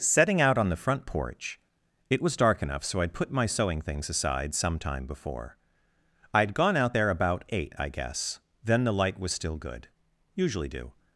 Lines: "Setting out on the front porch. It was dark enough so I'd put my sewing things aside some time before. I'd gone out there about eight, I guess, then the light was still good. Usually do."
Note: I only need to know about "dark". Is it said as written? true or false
true